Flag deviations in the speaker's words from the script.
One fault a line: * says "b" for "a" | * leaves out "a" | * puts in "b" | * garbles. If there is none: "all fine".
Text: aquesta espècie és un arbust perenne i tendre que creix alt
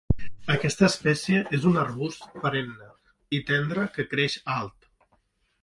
all fine